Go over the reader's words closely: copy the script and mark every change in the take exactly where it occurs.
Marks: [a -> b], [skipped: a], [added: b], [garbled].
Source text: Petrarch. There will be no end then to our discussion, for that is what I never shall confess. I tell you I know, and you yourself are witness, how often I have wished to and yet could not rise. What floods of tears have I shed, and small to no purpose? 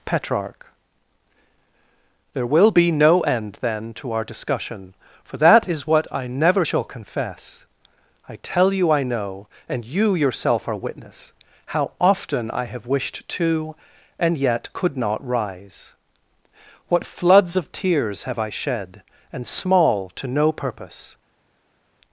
Petrarch. There will be no end then to our discussion, for that is what I never shall confess. I tell you I know, and you yourself are witness, how often I have wished to and yet could not rise. What floods of tears have I shed, and small to no purpose?